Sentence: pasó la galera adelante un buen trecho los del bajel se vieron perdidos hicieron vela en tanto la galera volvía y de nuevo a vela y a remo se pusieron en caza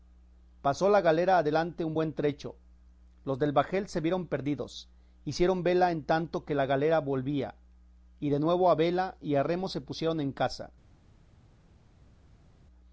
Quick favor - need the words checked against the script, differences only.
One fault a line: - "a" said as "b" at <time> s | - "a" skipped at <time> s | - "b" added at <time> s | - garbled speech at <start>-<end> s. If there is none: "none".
- "que" added at 6.4 s